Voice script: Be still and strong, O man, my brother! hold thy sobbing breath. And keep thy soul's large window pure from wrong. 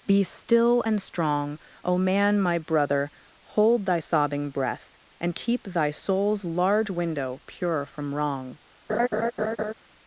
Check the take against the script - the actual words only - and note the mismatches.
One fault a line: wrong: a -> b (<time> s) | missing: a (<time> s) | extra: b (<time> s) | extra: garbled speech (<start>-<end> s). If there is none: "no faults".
no faults